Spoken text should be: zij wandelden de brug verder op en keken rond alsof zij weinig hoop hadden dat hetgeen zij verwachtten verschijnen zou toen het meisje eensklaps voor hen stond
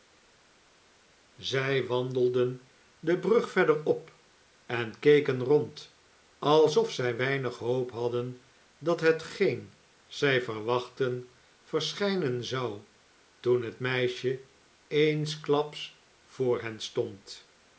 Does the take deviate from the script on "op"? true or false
false